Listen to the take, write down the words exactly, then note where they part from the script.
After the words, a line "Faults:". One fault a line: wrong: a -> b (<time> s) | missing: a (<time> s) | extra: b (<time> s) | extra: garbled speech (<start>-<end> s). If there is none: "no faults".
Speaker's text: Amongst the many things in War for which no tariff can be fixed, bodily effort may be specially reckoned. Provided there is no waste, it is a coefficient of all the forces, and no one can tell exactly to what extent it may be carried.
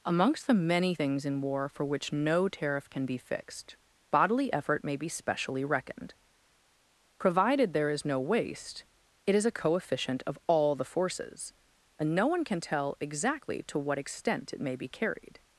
Amongst the many things in War for which no tariff can be fixed, bodily effort may be specially reckoned. Provided there is no waste, it is a coefficient of all the forces, and no one can tell exactly to what extent it may be carried.
Faults:
no faults